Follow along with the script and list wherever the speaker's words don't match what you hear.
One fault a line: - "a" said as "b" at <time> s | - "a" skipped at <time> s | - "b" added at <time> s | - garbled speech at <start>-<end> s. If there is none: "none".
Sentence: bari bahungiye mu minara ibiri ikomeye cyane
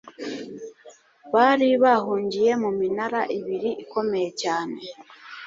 none